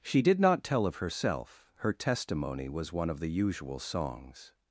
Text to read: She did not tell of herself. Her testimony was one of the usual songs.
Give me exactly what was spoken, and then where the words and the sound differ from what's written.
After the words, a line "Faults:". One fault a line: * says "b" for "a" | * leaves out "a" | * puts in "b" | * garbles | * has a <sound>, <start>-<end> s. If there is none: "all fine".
She did not tell of herself. Her testimony was one of the usual songs.
Faults:
all fine